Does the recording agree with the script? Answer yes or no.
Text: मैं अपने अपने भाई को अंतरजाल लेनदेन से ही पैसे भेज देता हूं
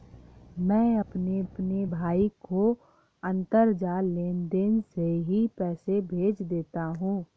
yes